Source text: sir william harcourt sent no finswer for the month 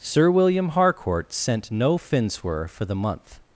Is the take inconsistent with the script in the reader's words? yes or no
no